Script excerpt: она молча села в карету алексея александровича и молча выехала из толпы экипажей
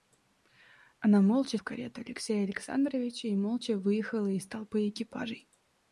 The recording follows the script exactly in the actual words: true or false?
false